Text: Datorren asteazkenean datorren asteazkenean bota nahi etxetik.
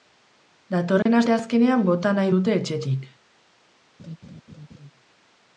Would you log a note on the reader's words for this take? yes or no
yes